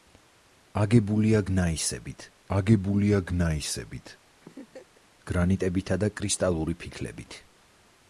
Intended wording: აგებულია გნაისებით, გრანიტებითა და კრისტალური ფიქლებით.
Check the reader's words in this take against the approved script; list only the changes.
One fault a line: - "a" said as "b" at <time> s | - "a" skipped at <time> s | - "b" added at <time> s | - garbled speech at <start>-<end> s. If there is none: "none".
- "აგებულია გნაისებით" added at 2.6 s